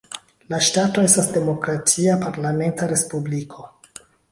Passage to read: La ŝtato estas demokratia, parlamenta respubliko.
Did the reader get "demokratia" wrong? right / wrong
right